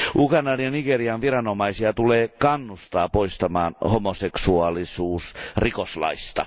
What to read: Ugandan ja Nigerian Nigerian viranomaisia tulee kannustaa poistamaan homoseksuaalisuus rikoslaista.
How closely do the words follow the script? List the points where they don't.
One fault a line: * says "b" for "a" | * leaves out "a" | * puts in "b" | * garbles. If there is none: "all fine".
* leaves out "Nigerian"